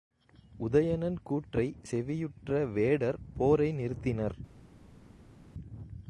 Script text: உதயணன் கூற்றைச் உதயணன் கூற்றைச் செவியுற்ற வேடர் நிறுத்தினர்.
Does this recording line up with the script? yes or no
no